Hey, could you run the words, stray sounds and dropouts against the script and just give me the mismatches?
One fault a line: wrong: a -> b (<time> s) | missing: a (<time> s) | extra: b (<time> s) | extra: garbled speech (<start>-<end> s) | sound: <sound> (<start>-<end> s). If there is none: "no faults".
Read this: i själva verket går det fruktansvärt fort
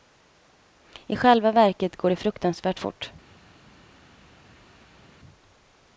no faults